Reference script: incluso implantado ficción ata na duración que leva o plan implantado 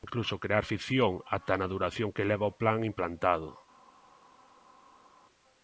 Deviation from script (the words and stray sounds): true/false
true